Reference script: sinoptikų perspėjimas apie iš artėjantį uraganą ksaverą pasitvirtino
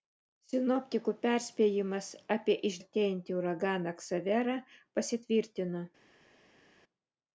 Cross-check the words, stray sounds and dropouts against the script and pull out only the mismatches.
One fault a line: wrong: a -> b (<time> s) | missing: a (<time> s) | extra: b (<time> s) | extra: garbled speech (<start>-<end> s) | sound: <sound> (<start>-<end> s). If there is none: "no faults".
no faults